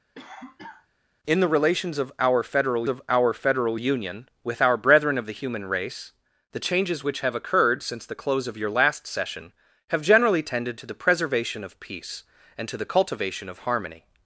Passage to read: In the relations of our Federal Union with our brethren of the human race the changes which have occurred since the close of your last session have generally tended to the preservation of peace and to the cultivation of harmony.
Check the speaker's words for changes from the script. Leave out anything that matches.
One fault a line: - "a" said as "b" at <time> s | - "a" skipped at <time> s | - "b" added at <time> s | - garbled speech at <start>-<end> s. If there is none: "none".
- "of our Federal" added at 2.9 s